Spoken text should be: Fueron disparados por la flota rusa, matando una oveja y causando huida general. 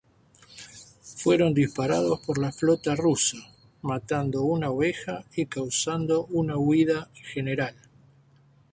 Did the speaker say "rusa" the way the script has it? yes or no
yes